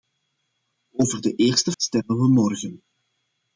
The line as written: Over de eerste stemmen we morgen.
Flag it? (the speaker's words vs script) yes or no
no